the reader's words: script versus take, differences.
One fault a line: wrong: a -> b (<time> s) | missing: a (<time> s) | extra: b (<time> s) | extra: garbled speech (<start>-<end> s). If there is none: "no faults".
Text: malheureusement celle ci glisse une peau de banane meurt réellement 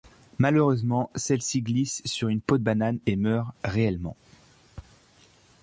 extra: sur (2.0 s)
extra: et (3.1 s)